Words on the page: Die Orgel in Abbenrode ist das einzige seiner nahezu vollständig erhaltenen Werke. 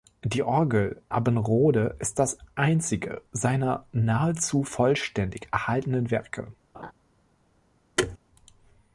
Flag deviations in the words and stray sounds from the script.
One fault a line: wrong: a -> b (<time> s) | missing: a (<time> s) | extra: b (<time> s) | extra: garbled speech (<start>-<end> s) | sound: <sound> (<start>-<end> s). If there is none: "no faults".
missing: in (1.0 s)
sound: laugh (6.7-6.9 s)
sound: thud (8.0-8.2 s)